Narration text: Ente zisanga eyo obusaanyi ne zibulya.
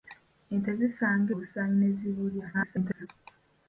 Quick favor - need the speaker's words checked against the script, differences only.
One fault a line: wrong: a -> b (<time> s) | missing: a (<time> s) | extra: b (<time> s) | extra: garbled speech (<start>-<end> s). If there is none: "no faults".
missing: eyo (1.3 s)
extra: garbled speech (2.5-3.1 s)